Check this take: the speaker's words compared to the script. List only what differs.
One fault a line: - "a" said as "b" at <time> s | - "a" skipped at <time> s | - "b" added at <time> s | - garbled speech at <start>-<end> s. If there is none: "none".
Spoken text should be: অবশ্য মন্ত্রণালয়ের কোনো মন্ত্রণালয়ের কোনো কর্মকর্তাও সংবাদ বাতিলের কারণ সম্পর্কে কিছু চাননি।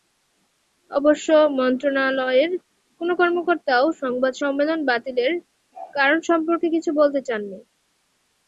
- "মন্ত্রণালয়ের কোনো" skipped at 3.1 s
- "সম্মেলন" added at 4.4 s
- "বলতে" added at 7.0 s